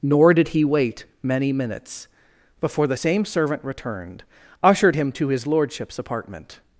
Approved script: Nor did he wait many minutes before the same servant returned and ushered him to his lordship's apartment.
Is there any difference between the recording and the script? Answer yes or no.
yes